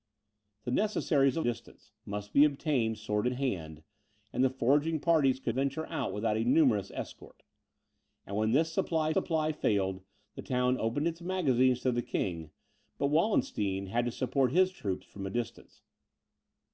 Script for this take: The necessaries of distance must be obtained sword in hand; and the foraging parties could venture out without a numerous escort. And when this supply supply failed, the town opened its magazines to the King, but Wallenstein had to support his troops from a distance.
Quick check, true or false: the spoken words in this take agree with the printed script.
true